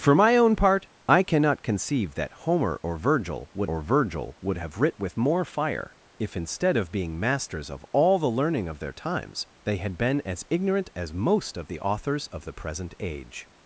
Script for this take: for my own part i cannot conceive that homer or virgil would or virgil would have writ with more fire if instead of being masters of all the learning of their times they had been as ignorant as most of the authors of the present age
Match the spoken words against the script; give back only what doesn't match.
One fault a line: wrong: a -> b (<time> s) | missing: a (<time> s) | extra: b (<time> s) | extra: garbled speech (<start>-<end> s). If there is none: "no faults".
no faults